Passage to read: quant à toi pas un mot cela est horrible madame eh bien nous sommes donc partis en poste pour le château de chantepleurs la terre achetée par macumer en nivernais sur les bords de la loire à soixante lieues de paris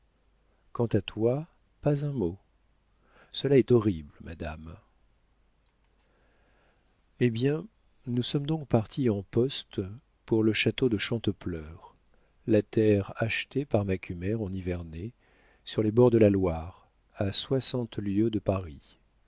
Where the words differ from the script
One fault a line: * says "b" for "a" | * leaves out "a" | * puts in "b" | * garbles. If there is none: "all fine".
all fine